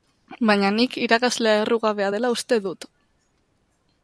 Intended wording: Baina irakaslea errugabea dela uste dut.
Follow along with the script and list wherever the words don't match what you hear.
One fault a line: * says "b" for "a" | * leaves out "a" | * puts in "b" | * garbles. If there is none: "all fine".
* puts in "nik"